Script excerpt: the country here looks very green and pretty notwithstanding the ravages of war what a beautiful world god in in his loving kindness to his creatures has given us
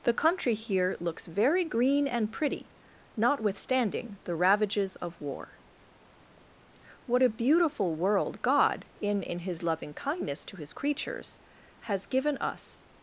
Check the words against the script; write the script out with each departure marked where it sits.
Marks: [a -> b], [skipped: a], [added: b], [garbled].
the country here looks very green and pretty notwithstanding the ravages of war what a beautiful world god in in his loving kindness to his creatures has given us